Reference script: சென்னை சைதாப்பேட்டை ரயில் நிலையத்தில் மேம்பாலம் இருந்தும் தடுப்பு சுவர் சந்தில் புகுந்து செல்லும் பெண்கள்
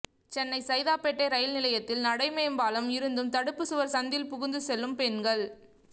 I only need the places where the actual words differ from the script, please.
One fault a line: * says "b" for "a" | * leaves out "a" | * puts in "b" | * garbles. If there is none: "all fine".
* puts in "நடை"